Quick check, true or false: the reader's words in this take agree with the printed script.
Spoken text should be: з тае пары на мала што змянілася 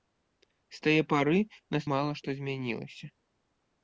true